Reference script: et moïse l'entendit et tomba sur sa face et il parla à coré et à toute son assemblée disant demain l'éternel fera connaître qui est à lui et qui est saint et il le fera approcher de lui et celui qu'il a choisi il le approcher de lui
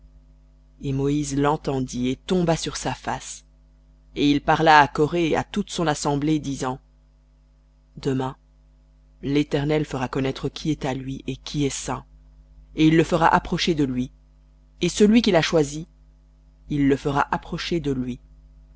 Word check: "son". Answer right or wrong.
right